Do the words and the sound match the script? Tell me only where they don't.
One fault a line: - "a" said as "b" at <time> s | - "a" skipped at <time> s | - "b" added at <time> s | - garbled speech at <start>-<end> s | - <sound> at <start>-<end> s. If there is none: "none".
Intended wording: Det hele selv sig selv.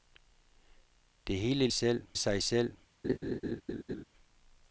- laugh at 3.0-4.0 s